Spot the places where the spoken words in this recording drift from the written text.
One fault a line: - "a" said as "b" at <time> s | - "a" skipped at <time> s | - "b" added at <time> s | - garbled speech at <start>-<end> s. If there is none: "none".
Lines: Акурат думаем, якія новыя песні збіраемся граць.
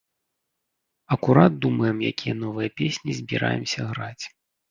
none